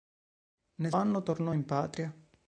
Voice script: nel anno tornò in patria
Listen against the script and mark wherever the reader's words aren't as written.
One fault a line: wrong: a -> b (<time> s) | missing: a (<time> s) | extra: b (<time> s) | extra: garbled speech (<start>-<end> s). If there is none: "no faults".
no faults